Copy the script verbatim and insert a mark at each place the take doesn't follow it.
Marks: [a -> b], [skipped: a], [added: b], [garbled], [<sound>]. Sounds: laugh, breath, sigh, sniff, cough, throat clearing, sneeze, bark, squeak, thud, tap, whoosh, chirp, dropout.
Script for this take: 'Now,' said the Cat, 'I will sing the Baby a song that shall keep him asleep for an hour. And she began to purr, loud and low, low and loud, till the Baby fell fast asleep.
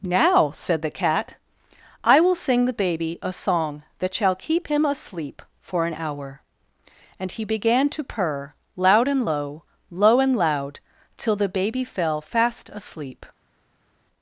'Now,' said the Cat, 'I will sing the Baby a song that shall keep him asleep for an hour. And [she -> he] began to purr, loud and low, low and loud, till the Baby fell fast asleep.